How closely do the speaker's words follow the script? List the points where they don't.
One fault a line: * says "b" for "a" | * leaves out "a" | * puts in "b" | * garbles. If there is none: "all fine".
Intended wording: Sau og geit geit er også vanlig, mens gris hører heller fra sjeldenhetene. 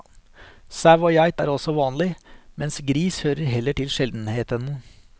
* leaves out "geit"
* says "til" for "fra"